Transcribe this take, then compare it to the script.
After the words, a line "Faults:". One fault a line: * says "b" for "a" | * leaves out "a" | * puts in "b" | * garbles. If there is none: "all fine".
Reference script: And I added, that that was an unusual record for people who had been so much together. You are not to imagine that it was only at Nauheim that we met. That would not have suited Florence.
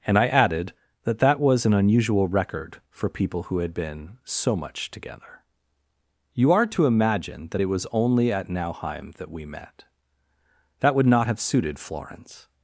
And I added, that that was an unusual record for people who had been so much together. You are to imagine that it was only at Nauheim that we met. That would not have suited Florence.
Faults:
* leaves out "not"